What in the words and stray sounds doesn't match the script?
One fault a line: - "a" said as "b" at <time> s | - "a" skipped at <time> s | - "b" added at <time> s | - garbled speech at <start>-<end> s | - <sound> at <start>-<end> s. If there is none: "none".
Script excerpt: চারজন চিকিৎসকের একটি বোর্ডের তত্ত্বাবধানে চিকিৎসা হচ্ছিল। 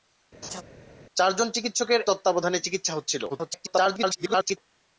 - laugh at 0.4-0.6 s
- "একটি বোর্ডের" skipped at 2.0 s
- garbled speech at 3.3-4.6 s